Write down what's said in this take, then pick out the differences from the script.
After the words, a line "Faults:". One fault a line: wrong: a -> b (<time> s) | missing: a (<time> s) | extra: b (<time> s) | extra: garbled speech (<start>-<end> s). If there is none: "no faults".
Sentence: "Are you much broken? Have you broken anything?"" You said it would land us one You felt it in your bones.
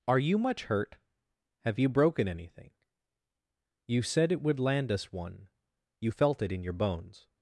"Are you much hurt? Have you broken anything?"" You said it would land us one You felt it in your bones.
Faults:
wrong: broken -> hurt (0.6 s)